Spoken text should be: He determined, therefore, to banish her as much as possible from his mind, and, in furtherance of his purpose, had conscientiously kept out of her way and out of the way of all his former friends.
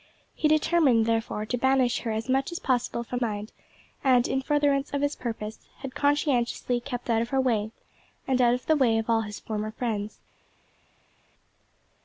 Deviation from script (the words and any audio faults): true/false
true